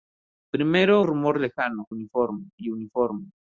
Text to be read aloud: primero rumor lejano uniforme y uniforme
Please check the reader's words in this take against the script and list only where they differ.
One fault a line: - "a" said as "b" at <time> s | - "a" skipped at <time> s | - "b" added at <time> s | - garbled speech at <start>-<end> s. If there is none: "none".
none